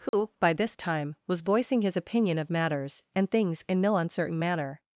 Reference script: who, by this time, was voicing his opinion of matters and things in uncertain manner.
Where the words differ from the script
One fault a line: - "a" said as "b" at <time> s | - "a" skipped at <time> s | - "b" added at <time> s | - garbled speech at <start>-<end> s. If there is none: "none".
- "no" added at 3.8 s